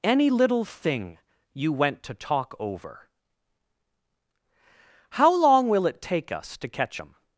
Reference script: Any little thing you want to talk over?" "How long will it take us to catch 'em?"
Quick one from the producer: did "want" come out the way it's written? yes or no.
no